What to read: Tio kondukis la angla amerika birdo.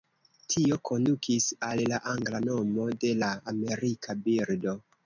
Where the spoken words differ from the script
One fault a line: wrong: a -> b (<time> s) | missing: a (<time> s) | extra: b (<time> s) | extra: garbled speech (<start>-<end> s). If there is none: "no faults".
extra: al (1.7 s)
extra: nomo de la (2.5 s)